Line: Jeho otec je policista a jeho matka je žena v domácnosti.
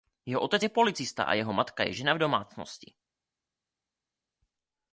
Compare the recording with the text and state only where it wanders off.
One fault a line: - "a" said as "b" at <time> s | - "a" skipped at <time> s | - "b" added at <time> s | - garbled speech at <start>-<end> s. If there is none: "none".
none